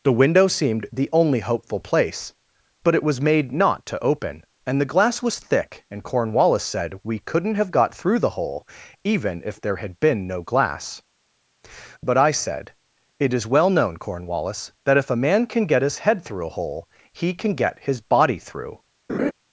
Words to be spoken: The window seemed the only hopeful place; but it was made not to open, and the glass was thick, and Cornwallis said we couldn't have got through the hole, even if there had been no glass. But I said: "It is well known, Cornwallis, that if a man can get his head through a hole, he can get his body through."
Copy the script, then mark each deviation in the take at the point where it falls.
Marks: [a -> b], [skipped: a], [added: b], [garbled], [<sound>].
The window seemed the only hopeful place; but it was made not to open, and the glass was thick, and Cornwallis said we couldn't have got through the hole, even if there had been no glass. But I said: "It is well known, Cornwallis, that if a man can get his head through a hole, he can get his body through." [laugh]